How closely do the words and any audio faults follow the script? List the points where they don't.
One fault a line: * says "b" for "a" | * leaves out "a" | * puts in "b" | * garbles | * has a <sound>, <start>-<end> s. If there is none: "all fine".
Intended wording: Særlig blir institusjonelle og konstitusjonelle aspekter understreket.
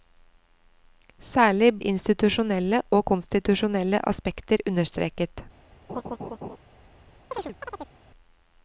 * leaves out "blir"
* has a laugh, 5.9-6.6 s
* has a chirp, 7.3-7.9 s